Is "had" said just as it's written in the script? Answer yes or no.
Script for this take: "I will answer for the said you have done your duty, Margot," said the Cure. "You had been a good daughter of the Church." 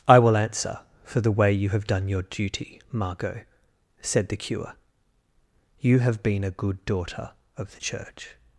no